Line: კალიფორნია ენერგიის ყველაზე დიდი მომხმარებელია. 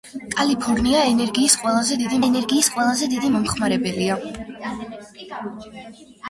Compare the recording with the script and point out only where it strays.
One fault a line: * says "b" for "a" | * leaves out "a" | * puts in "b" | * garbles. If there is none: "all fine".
* puts in "ენერგიის ყველაზე დიდი"